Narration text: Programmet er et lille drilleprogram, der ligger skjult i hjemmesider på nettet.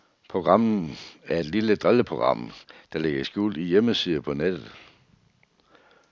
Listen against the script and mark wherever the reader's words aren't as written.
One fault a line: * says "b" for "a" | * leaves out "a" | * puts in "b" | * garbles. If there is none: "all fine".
all fine